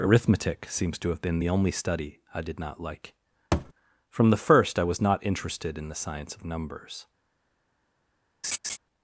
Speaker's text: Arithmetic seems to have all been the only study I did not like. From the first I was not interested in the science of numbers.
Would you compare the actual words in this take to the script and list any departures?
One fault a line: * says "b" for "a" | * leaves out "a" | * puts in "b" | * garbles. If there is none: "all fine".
* leaves out "all"